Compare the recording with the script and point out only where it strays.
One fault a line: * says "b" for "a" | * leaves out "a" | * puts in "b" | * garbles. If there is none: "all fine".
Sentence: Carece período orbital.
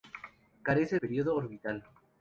all fine